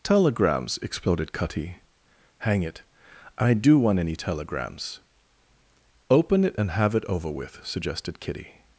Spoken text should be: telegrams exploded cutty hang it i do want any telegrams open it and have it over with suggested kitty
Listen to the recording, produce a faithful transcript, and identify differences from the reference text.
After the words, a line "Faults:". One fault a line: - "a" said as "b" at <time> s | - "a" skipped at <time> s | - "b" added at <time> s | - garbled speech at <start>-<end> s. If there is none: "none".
telegrams exploded cutty hang it i do want any telegrams open it and have it over with suggested kitty
Faults:
none